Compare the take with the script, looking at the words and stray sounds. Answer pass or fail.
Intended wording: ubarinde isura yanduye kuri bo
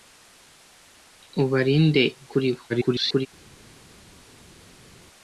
fail